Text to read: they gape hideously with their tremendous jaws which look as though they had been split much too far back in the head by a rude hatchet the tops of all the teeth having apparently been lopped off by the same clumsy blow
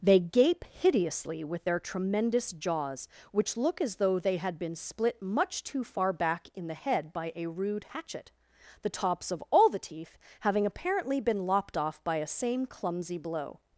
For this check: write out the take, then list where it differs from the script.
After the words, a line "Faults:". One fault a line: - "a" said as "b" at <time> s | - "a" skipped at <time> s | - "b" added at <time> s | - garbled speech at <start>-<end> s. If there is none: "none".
they gape hideously with their tremendous jaws which look as though they had been split much too far back in the head by a rude hatchet the tops of all the teeth having apparently been lopped off by a same clumsy blow
Faults:
- "the" said as "a" at 12.2 s